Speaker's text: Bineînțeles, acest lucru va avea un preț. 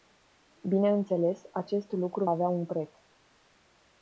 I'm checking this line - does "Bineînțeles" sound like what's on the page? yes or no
yes